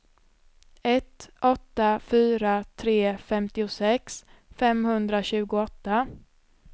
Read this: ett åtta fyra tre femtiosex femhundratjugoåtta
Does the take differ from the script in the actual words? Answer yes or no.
no